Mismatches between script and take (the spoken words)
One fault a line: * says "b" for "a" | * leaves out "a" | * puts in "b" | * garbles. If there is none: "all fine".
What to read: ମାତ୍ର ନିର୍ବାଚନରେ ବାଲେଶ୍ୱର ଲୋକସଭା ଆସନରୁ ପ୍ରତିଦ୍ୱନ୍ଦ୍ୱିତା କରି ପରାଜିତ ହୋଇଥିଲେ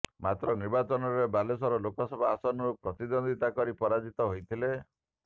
all fine